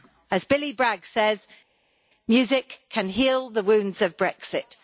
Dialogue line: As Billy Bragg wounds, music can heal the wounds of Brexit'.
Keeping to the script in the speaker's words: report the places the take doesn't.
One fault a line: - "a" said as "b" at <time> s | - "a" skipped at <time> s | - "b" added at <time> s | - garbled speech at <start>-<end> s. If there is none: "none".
- "wounds" said as "says" at 1.0 s